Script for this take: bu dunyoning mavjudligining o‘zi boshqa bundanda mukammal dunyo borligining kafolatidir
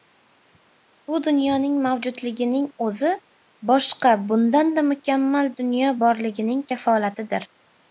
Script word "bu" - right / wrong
right